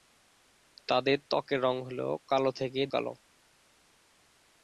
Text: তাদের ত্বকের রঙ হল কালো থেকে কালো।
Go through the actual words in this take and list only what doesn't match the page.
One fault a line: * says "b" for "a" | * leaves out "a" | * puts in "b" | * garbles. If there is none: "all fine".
all fine